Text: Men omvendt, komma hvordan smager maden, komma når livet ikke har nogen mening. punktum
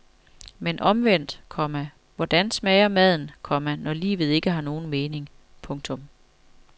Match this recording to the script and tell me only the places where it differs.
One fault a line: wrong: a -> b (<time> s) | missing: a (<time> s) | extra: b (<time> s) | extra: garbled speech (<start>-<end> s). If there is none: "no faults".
no faults